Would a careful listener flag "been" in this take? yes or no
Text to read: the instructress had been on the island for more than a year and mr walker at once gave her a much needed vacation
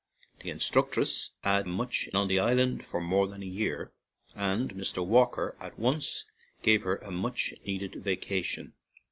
yes